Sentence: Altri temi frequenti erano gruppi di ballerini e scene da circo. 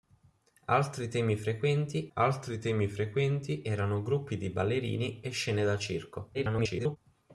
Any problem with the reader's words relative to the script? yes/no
yes